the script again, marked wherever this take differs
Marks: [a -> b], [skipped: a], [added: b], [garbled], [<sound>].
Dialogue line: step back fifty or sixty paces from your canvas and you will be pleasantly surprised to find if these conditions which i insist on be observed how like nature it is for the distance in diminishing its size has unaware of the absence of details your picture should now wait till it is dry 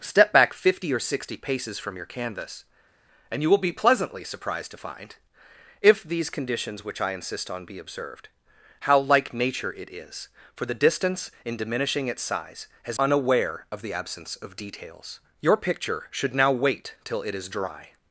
step back fifty or sixty paces from your canvas and you will be pleasantly surprised to find if these conditions which i insist on be observed how like nature it is for the distance in diminishing its size has unaware of the absence of details your picture should now wait till it is dry